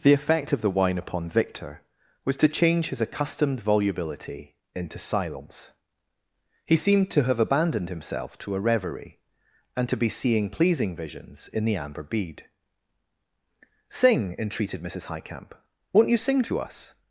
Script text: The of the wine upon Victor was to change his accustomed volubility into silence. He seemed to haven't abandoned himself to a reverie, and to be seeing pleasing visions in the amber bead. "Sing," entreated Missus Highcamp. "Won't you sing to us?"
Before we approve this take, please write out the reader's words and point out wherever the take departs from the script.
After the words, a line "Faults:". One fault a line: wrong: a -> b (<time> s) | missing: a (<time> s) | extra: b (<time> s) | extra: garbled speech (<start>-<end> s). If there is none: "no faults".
The effect of the wine upon Victor was to change his accustomed volubility into silence. He seemed to have abandoned himself to a reverie, and to be seeing pleasing visions in the amber bead. "Sing," entreated Missus Highcamp. "Won't you sing to us?"
Faults:
extra: effect (0.1 s)
wrong: haven't -> have (7.2 s)